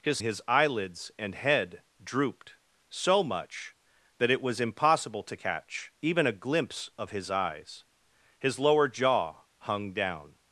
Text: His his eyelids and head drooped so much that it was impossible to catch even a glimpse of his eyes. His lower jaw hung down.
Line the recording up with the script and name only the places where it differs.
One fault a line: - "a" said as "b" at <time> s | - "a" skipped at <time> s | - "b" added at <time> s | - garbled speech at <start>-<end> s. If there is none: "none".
none